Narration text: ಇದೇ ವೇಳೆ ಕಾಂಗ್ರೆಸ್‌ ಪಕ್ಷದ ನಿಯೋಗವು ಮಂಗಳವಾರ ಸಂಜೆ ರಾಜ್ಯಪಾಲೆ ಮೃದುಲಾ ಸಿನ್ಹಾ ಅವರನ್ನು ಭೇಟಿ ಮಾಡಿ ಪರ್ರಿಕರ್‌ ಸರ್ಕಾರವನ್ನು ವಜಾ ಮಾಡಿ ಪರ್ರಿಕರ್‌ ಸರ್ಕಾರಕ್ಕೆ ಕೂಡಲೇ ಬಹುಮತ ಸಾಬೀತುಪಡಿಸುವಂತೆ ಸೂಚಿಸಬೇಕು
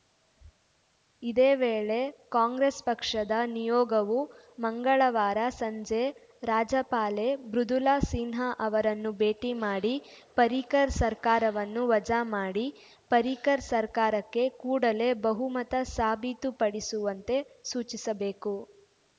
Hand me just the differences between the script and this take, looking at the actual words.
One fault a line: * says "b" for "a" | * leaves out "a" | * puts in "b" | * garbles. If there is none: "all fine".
all fine